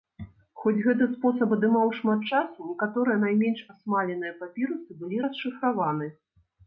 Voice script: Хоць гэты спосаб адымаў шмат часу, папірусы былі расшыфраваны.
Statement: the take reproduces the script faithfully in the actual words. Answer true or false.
false